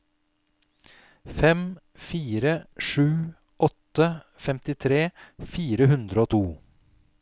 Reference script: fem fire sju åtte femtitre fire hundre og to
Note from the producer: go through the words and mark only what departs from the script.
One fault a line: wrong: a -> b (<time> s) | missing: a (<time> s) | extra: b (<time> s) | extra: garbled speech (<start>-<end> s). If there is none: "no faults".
no faults